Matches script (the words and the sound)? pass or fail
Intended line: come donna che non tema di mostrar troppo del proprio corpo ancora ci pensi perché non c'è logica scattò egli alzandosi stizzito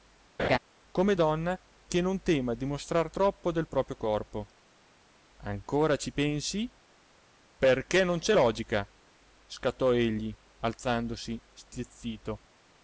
fail